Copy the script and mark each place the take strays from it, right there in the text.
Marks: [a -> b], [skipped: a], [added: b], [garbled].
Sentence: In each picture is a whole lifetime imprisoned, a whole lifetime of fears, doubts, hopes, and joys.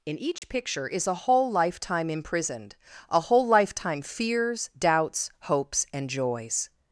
In each picture is a whole lifetime imprisoned, a whole lifetime [skipped: of] fears, doubts, hopes, and joys.